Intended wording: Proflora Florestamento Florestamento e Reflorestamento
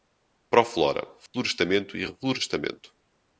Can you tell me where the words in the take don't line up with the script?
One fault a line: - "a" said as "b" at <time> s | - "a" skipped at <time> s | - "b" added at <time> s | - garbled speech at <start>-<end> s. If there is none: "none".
- "Florestamento" skipped at 1.9 s